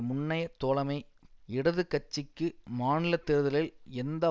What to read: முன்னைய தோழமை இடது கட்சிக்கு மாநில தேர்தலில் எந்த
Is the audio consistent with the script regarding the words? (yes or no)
yes